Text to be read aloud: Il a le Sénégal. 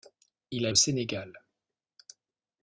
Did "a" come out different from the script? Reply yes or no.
no